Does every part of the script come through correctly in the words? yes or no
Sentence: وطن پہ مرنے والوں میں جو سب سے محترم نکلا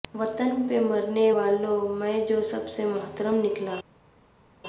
yes